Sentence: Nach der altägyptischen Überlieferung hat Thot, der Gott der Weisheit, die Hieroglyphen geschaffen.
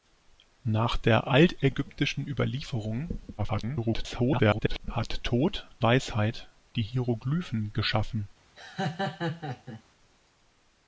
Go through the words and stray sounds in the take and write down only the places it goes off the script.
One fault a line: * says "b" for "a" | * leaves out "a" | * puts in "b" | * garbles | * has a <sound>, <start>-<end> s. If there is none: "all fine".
* garbles
* leaves out "der Gott der"
* has a laugh, 8.6-9.8 s